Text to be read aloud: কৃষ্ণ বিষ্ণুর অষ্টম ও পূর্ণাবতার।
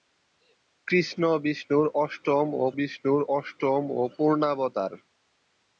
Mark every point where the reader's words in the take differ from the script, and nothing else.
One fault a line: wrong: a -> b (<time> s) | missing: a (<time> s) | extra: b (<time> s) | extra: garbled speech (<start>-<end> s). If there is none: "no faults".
extra: বিষ্ণুর অষ্টম ও (2.8 s)